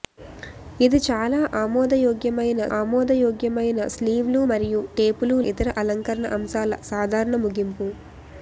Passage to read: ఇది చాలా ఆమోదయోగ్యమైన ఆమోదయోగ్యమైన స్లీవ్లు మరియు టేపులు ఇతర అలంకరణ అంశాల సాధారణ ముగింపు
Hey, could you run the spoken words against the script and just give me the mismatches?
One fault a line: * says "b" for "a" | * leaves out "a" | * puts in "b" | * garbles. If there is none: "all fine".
all fine